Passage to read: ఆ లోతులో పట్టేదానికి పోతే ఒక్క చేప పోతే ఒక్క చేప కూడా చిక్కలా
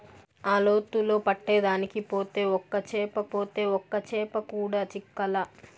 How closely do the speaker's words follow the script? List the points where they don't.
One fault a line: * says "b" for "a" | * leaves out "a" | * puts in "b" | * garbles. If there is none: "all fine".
all fine